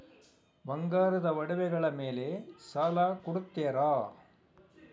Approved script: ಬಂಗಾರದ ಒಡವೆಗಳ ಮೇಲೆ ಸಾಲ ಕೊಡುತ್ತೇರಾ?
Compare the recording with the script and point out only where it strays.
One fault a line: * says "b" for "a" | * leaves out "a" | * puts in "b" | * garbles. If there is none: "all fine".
all fine